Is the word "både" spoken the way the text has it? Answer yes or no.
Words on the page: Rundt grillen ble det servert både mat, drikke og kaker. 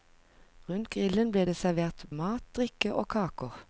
no